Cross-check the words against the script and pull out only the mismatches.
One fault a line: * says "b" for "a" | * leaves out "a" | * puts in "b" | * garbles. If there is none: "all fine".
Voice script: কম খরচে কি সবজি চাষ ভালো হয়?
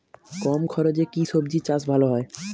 all fine